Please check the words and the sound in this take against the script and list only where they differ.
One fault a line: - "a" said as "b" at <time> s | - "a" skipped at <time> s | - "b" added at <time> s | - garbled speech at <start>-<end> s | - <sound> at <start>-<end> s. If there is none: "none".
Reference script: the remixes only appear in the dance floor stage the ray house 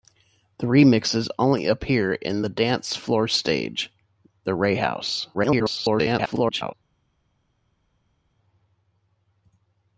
- garbled speech at 5.3-6.7 s